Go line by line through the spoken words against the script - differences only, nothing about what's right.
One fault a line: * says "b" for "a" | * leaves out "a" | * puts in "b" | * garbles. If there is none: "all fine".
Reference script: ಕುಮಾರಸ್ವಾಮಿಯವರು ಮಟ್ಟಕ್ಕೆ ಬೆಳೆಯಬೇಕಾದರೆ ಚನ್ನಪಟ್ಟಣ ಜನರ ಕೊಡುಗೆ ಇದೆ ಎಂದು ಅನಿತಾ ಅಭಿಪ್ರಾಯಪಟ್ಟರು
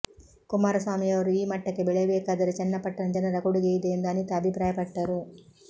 * puts in "ಈ"